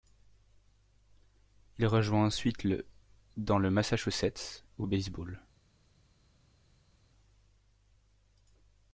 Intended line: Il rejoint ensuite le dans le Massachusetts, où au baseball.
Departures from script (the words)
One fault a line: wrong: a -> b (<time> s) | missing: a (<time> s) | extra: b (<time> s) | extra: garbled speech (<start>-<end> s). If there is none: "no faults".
no faults